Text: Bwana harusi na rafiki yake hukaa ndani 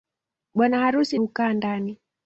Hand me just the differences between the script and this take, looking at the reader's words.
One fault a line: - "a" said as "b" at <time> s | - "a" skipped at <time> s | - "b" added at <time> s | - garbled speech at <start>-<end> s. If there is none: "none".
- "na rafiki yake" skipped at 1.2 s